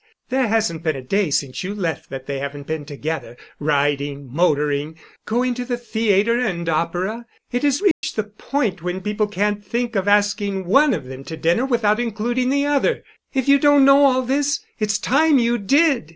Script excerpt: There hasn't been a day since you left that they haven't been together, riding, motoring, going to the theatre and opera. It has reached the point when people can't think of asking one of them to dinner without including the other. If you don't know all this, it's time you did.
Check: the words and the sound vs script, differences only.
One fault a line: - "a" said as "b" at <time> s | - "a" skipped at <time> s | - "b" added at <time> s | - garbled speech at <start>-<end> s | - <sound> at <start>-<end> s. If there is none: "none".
- dropout at 7.9-8.0 s